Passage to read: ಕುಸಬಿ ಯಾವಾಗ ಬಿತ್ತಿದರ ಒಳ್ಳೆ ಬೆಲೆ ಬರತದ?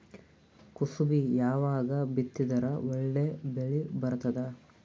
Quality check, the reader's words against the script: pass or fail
pass